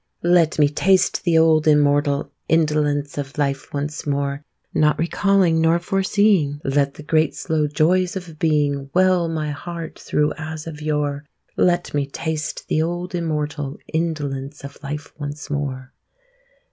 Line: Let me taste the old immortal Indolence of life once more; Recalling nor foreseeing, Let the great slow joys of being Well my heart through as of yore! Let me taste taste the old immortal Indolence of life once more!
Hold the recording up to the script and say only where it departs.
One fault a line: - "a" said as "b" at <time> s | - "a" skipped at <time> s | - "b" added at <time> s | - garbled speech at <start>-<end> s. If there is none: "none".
- "Not" added at 4.7 s
- "taste" skipped at 12.7 s